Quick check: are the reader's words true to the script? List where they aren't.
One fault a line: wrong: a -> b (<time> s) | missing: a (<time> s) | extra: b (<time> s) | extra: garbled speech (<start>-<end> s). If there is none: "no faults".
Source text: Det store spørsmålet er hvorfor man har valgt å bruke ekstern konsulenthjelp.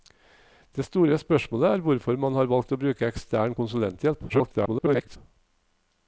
extra: garbled speech (4.3-5.2 s)